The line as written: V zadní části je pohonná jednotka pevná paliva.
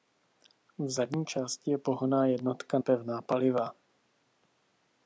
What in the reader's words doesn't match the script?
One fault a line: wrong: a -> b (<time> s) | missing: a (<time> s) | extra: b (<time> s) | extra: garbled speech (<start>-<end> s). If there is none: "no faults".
no faults